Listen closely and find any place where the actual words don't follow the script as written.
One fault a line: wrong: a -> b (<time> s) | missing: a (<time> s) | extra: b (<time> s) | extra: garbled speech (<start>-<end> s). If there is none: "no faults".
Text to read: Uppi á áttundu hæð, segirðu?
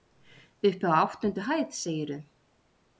no faults